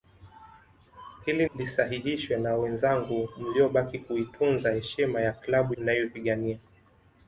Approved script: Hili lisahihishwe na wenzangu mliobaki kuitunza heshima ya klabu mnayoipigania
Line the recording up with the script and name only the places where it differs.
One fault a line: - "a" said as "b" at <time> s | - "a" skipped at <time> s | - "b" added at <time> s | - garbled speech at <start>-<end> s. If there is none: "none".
none